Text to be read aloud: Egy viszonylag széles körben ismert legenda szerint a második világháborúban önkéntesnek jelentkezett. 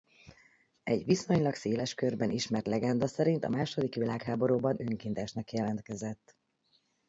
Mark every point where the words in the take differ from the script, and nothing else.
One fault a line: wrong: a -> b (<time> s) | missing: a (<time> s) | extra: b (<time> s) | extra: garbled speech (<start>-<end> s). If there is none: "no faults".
no faults